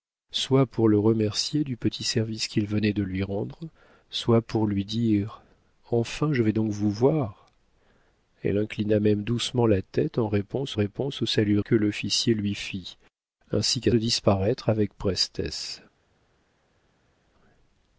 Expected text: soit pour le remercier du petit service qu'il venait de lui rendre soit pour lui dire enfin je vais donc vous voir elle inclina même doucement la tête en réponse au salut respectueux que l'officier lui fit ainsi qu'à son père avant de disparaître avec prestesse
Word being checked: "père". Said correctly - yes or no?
no